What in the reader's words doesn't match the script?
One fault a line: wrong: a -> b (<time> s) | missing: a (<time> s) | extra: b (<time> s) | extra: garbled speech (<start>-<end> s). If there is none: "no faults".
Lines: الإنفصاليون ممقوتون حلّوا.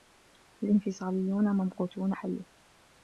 no faults